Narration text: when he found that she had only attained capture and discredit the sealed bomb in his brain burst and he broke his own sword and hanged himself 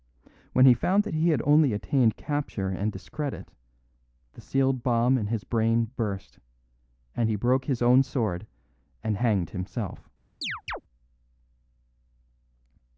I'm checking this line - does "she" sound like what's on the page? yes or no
no